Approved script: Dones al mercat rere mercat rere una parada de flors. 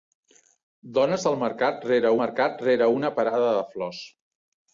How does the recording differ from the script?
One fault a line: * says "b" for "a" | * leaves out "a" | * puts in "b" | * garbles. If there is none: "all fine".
all fine